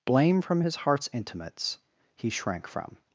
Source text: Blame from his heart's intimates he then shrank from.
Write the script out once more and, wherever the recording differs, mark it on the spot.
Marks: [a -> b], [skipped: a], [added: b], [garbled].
Blame from his heart's intimates he [skipped: then] shrank from.